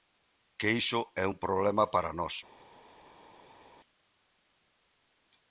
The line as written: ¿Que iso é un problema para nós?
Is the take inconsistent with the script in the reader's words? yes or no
no